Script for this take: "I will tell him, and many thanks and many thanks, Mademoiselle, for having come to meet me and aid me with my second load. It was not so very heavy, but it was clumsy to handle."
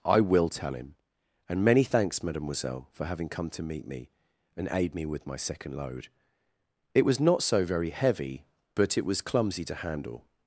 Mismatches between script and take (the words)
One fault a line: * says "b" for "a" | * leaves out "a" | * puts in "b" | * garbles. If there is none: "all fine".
* leaves out "and many thanks"